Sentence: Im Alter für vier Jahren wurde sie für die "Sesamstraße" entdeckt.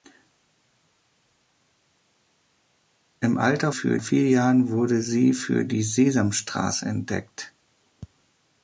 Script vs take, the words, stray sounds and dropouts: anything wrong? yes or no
no